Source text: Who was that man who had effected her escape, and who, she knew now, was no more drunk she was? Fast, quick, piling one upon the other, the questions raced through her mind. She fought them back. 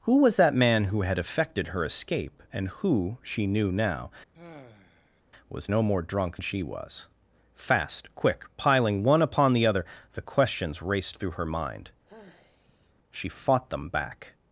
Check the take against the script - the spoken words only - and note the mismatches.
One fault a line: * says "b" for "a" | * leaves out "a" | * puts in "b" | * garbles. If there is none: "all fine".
all fine